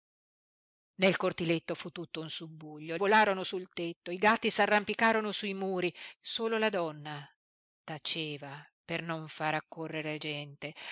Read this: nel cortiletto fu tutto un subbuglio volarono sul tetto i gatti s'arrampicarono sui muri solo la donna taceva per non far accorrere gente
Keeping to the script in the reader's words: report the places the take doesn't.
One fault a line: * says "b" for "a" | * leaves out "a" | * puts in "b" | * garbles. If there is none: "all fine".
all fine